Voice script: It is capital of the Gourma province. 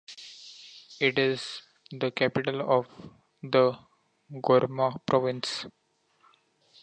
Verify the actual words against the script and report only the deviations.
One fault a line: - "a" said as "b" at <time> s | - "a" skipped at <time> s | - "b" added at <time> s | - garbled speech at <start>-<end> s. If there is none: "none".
- "the" added at 1.9 s